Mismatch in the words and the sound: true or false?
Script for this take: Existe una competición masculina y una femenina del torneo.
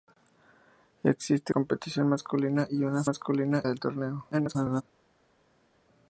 true